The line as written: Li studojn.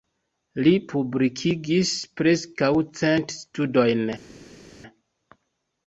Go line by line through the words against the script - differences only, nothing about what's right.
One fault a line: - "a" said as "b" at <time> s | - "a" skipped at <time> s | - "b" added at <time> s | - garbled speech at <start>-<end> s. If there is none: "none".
- "publikigis preskaŭ cent" added at 0.9 s